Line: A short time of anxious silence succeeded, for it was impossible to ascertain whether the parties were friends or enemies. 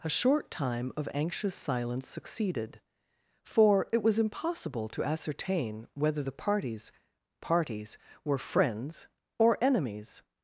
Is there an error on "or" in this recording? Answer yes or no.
no